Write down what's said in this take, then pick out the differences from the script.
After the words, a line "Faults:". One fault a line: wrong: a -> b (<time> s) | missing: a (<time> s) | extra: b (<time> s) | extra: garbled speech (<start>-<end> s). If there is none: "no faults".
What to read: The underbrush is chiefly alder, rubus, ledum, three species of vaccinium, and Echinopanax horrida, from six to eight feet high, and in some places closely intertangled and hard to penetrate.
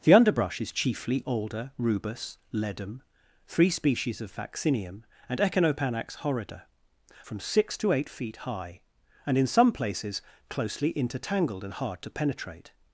The underbrush is chiefly alder, rubus, ledum, three species of vaccinium, and Echinopanax horrida, from six to eight feet high, and in some places closely intertangled and hard to penetrate.
Faults:
no faults